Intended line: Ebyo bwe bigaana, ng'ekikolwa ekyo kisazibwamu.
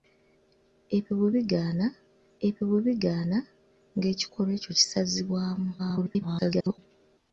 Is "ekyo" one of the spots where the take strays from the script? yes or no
no